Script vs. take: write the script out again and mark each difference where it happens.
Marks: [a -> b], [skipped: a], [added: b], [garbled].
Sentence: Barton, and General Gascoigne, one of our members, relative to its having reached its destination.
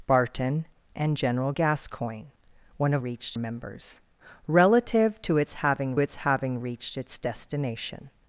Barton, and General Gascoigne, one of [our -> reached] members, relative to its having [added: its having] reached its destination.